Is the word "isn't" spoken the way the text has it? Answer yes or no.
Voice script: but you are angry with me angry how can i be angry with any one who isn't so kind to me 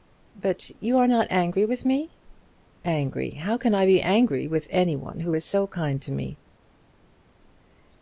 no